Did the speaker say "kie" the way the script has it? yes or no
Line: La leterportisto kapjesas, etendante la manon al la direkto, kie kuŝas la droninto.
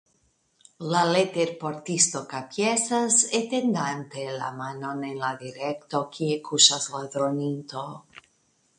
yes